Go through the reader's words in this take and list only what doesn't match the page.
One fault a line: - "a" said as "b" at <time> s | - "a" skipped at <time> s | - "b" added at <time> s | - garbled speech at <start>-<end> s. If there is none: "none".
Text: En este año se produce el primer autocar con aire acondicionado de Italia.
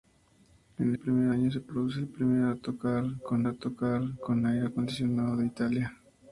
- "este" said as "primer" at 1.0 s
- "autocar con" added at 3.4 s